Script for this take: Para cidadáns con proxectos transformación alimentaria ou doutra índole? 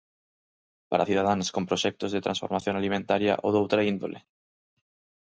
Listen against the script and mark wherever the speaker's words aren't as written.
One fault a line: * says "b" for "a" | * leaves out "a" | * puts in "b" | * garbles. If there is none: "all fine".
* puts in "de"